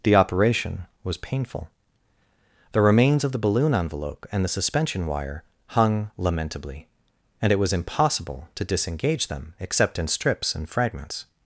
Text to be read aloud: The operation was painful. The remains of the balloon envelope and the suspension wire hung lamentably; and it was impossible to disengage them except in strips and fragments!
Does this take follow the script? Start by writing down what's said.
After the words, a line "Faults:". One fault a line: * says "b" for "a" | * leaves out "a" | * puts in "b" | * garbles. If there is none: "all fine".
The operation was painful. The remains of the balloon envelope and the suspension wire hung lamentably; and it was impossible to disengage them except in strips and fragments!
Faults:
all fine